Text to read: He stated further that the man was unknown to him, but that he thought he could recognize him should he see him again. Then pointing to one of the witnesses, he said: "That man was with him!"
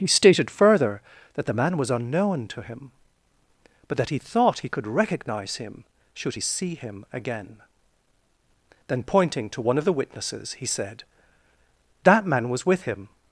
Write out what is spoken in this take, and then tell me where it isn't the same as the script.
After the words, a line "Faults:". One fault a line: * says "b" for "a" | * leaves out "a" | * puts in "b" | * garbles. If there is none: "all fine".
He stated further that the man was unknown to him, but that he thought he could recognize him should he see him again. Then pointing to one of the witnesses, he said: "That man was with him!"
Faults:
all fine